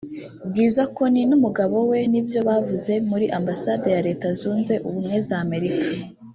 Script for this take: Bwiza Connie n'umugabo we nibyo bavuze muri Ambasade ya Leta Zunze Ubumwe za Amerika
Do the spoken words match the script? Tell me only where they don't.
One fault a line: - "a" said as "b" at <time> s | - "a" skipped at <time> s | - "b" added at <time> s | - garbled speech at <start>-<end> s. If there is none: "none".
none